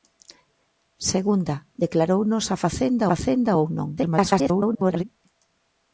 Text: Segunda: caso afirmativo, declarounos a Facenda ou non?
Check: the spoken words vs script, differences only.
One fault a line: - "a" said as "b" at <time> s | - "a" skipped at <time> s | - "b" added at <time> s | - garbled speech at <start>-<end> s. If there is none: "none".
- "caso afirmativo" skipped at 1.6 s
- "Facenda" added at 3.1 s
- garbled speech at 4.0-5.0 s